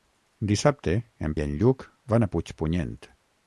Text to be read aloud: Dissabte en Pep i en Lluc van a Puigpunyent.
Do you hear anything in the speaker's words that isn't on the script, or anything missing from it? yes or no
yes